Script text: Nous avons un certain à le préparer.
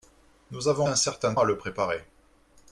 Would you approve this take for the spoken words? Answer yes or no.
yes